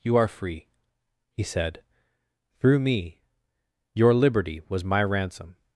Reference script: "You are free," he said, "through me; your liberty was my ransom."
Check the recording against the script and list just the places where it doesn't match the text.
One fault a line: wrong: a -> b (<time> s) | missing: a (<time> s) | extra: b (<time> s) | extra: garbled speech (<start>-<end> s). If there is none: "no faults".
no faults